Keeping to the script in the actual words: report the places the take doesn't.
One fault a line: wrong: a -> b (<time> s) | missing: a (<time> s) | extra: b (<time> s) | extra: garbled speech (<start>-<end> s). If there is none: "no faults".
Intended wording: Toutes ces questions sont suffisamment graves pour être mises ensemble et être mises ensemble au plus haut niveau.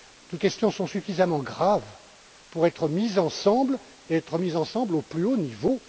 missing: ces (0.4 s)